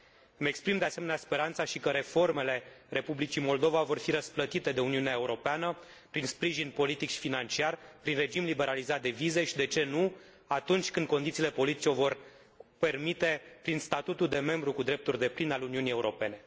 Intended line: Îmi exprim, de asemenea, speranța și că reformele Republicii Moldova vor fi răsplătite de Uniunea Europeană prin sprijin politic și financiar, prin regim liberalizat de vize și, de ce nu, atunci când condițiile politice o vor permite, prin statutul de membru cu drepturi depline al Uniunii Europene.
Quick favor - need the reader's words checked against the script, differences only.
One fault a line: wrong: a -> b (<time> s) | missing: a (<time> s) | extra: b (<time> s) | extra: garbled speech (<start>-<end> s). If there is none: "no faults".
no faults